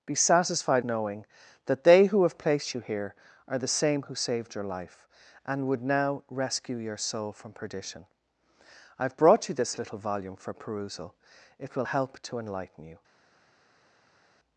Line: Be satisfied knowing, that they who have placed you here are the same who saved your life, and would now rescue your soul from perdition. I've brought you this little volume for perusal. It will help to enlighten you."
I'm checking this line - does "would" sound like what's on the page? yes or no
yes